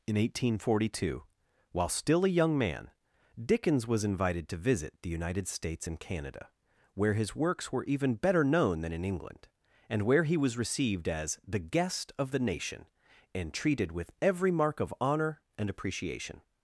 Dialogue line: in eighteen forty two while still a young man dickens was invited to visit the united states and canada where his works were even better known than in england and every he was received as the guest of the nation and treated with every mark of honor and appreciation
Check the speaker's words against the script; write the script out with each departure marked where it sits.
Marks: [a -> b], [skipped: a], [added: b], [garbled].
in eighteen forty two while still a young man dickens was invited to visit the united states and canada where his works were even better known than in england and [every -> where] he was received as the guest of the nation and treated with every mark of honor and appreciation